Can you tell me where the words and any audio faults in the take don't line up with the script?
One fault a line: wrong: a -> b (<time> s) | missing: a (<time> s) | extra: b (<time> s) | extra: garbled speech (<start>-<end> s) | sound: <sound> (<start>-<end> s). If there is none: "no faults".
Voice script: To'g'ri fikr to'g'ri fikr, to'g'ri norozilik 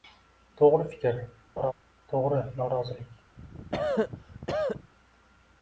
sound: laugh (1.6-1.7 s)
missing: fikr to'g'ri (2.4 s)
sound: cough (3.4-4.9 s)